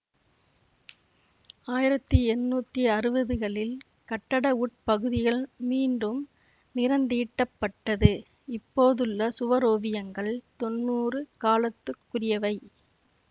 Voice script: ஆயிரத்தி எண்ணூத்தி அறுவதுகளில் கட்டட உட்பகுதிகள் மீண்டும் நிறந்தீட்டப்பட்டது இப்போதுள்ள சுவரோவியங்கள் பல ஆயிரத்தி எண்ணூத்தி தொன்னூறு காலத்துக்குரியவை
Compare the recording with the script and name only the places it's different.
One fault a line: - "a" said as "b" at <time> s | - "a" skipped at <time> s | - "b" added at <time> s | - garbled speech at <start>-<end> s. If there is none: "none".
- "பல ஆயிரத்தி எண்ணூத்தி" skipped at 10.3 s